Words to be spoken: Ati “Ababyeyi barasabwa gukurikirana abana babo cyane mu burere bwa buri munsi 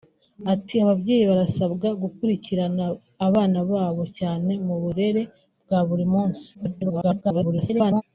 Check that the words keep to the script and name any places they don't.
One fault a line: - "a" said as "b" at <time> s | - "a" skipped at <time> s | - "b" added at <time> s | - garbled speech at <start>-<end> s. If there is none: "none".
- garbled speech at 6.5-8.0 s